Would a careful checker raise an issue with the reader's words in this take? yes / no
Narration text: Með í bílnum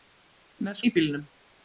no